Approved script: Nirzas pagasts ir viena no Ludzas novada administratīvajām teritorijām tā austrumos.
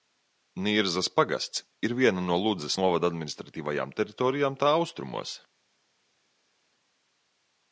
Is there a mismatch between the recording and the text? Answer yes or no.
no